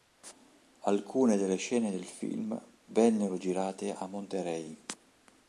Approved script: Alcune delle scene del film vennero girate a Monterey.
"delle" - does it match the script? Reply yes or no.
yes